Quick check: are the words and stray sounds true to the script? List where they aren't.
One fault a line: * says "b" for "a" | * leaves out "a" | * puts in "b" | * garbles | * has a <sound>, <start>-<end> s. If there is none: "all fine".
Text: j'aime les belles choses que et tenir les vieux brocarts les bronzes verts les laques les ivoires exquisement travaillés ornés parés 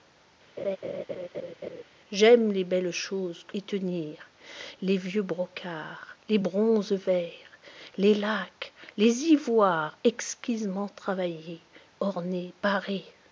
* has a laugh, 0.6-1.8 s